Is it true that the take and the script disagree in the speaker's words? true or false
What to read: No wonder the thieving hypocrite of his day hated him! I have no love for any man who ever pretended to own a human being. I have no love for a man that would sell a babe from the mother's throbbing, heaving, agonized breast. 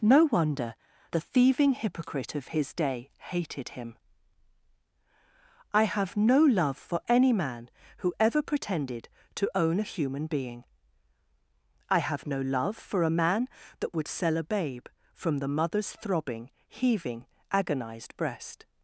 false